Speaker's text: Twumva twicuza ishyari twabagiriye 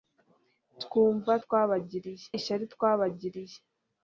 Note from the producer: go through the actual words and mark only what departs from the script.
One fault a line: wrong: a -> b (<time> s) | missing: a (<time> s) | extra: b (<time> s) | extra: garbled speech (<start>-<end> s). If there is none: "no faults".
wrong: twicuza -> twabagiriye (1.4 s)